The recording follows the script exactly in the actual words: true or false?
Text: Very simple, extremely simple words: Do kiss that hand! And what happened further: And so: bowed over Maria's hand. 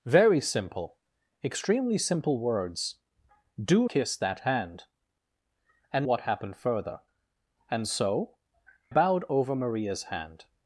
true